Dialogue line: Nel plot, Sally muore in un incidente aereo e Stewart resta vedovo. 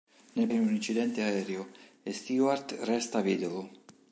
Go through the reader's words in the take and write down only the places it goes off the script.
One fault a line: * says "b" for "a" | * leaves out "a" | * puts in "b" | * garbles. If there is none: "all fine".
* leaves out "plot Sally muore"